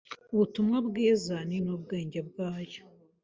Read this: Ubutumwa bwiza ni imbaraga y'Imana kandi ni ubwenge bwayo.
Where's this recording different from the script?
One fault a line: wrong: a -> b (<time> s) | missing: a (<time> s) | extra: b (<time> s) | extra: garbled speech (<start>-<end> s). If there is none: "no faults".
missing: imbaraga y'Imana kandi (1.6 s)